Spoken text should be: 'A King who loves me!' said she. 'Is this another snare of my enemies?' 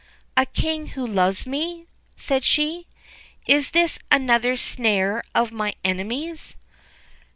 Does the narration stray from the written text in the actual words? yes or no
no